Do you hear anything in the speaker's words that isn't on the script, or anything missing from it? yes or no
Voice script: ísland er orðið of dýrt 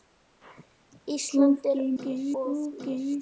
yes